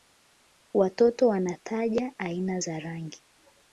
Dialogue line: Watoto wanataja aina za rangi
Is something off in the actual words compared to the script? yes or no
no